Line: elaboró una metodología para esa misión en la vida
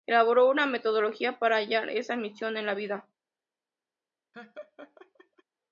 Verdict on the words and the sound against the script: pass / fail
fail